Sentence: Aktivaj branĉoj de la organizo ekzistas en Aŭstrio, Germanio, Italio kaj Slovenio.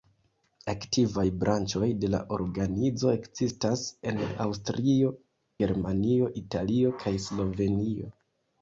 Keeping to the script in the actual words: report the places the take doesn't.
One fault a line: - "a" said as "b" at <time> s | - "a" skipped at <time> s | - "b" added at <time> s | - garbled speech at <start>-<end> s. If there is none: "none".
none